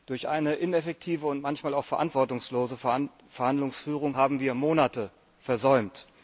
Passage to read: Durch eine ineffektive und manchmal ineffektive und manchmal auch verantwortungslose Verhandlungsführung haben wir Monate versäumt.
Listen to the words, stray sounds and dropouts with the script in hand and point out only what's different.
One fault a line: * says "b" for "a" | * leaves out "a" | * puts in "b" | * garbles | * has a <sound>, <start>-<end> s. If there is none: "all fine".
* leaves out "ineffektive und manchmal"